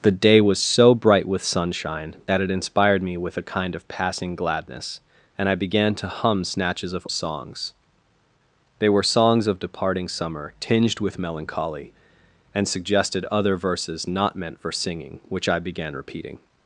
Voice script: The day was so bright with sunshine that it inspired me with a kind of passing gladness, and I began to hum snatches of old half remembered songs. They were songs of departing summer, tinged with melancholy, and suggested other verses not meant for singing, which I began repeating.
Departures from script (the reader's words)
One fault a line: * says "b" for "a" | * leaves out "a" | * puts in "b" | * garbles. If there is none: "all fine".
* leaves out "old half remembered"